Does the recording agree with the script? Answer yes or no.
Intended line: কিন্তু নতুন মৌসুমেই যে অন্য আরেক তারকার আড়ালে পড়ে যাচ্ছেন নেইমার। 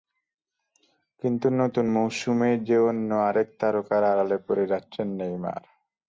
yes